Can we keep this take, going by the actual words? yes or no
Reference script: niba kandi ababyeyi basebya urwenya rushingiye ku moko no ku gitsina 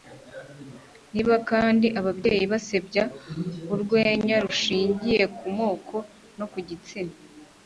yes